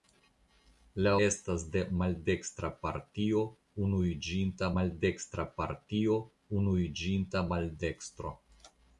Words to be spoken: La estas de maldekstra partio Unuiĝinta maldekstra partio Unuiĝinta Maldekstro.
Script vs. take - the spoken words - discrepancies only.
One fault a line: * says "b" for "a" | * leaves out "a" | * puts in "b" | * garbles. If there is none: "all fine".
all fine